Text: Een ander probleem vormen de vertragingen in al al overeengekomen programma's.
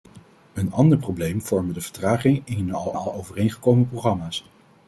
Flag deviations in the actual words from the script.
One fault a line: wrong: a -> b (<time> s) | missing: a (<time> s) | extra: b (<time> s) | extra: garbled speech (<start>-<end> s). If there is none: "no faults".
no faults